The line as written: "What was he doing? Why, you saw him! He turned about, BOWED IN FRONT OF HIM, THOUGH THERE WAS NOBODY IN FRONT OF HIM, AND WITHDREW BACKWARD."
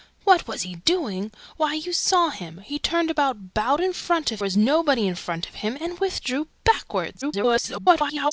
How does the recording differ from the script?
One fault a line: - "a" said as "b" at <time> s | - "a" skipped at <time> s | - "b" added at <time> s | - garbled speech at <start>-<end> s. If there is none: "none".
- "HIM THOUGH THERE" skipped at 4.4 s
- garbled speech at 7.2-8.3 s